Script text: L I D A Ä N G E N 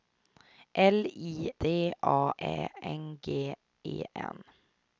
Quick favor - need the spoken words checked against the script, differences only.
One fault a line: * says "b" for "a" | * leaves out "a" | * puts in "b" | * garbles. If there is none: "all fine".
all fine